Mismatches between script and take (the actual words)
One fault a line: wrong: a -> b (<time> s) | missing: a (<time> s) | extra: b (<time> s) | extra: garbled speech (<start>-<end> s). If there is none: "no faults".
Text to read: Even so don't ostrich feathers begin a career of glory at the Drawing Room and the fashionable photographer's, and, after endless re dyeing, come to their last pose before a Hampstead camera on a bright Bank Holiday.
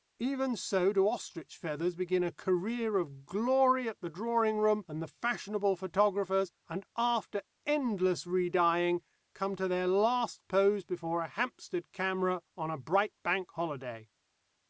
wrong: don't -> do (0.9 s)